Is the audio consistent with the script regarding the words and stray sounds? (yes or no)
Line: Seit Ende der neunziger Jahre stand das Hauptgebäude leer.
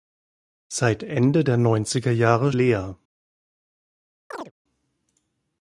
no